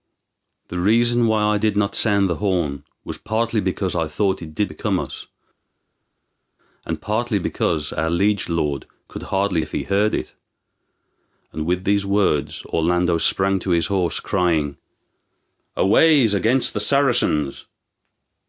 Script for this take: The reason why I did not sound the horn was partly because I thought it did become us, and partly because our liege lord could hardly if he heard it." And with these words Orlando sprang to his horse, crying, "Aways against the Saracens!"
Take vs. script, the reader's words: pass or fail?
pass